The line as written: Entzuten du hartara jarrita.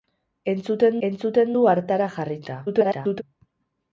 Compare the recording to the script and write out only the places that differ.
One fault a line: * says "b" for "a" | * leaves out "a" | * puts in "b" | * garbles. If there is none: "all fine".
* puts in "entzuten"
* garbles